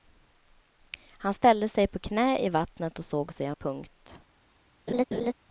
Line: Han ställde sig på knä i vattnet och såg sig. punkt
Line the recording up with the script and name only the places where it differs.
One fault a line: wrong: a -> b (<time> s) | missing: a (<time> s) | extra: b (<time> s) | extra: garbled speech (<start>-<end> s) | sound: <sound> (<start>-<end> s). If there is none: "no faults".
sound: laugh (4.9-5.3 s)